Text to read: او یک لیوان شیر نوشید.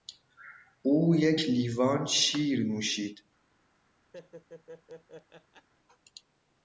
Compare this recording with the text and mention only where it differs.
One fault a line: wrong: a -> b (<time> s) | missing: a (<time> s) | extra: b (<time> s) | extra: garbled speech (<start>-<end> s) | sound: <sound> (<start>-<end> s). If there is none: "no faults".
sound: laugh (4.1-5.7 s)